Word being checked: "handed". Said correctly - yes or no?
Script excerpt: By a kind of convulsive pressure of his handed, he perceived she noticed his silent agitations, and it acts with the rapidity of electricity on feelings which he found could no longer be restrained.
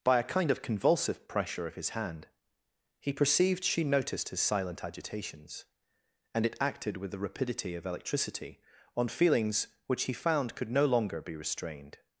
no